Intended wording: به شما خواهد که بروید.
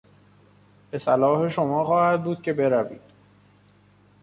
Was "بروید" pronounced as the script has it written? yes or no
yes